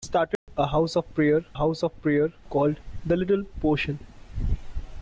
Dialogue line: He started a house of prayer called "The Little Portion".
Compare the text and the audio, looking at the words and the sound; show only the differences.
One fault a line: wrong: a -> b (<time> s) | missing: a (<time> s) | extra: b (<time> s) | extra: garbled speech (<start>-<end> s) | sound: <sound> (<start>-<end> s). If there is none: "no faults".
sound: dropout (0.3-0.5 s)
extra: house of prayer (1.5 s)